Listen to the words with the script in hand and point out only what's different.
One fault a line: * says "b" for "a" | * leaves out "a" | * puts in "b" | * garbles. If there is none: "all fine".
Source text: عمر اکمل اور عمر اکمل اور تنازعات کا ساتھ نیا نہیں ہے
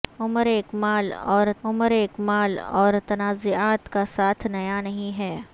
all fine